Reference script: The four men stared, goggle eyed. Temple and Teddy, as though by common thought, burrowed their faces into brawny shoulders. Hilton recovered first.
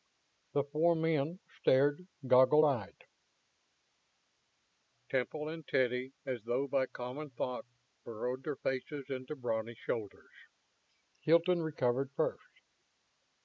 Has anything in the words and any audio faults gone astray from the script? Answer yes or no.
no